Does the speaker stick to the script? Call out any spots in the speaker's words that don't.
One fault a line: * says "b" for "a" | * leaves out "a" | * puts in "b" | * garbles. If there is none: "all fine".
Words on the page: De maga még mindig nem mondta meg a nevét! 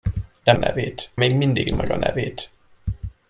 * says "nevét" for "maga"
* leaves out "nem mondta"